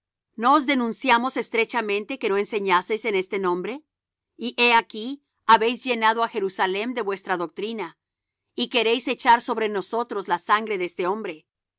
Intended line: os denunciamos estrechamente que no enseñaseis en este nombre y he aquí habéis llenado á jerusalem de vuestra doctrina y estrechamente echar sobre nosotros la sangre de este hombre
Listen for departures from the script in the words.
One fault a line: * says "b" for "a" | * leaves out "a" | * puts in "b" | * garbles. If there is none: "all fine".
* says "queréis" for "estrechamente"